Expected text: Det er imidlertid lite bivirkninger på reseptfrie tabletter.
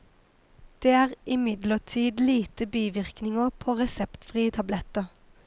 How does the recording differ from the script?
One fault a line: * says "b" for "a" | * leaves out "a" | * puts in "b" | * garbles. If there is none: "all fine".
all fine